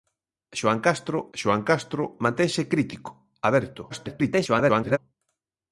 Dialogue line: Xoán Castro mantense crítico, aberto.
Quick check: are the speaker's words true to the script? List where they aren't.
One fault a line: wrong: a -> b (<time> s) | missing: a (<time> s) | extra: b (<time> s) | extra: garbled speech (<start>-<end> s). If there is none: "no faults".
extra: xoán Castro (1.4 s)
extra: garbled speech (3.9-5.0 s)